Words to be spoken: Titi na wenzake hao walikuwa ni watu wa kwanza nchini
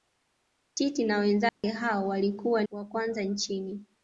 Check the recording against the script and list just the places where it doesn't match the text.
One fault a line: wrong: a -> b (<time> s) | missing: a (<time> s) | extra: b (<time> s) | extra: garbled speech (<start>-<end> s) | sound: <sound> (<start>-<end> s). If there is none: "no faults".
sound: dropout (1.5-1.6 s)
missing: ni watu (2.6 s)